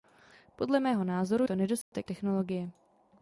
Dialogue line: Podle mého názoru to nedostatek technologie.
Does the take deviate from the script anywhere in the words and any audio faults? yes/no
yes